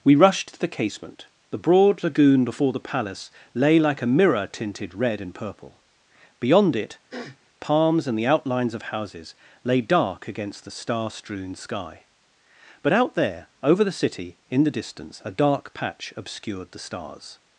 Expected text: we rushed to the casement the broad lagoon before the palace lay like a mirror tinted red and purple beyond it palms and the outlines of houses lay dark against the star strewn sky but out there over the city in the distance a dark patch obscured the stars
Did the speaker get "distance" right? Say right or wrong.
right